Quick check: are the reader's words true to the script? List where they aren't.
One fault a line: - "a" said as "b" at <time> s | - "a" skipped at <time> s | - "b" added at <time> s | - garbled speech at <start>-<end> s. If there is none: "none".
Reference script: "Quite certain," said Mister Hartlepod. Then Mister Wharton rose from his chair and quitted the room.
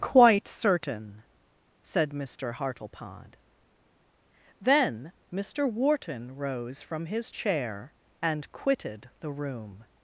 none